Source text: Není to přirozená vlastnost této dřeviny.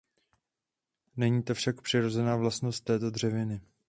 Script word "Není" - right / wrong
right